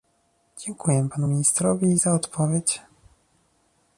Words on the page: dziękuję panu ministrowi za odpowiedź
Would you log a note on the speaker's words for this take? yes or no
no